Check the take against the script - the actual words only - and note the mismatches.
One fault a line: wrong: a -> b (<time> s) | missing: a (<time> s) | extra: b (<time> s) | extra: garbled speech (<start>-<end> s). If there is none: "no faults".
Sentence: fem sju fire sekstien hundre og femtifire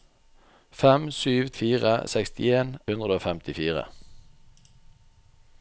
no faults